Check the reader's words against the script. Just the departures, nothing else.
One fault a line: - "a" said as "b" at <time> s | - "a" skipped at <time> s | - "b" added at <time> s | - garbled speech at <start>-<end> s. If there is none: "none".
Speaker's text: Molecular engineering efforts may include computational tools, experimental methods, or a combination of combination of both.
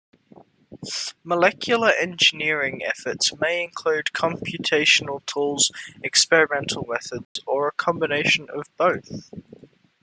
- "combination of" skipped at 8.7 s